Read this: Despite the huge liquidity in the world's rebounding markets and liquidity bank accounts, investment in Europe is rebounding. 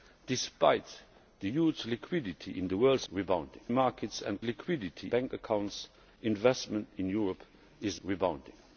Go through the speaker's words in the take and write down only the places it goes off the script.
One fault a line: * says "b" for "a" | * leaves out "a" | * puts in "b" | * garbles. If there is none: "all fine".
all fine